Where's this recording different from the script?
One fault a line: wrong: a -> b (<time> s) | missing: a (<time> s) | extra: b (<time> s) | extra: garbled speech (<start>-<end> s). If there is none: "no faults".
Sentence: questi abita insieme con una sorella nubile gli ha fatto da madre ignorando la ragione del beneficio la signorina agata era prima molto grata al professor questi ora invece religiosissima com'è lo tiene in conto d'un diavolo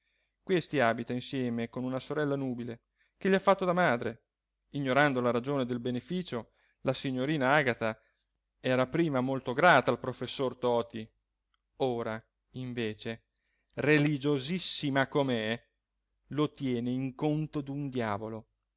extra: che (3.2 s)
wrong: questi -> toti (10.6 s)